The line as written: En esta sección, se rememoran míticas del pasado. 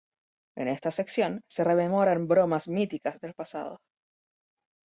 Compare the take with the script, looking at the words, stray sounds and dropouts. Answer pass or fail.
fail